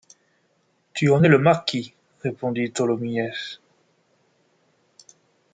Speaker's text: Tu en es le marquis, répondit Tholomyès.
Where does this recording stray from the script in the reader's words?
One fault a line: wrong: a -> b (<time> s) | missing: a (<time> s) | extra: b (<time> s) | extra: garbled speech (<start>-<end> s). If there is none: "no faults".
no faults